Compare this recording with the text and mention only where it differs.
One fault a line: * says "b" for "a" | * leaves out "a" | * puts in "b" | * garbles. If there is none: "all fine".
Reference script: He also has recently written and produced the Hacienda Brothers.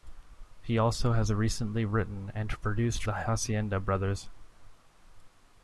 all fine